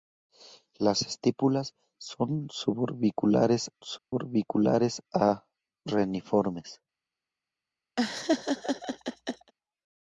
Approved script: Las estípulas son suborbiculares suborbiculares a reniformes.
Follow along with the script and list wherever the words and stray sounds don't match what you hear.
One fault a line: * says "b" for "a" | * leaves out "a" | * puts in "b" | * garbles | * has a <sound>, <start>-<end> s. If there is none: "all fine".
* has a dropout, 4.0-4.1 s
* has a laugh, 8.0-9.5 s